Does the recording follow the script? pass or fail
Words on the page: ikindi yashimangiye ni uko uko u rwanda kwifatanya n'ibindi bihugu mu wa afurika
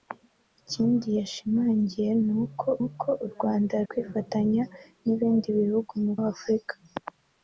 pass